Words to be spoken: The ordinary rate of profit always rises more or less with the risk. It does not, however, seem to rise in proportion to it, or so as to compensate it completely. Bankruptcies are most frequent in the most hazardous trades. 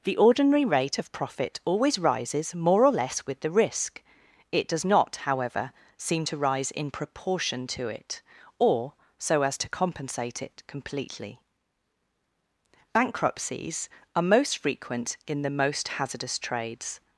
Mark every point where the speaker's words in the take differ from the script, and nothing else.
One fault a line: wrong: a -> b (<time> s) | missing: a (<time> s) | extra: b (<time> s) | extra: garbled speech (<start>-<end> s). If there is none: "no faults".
no faults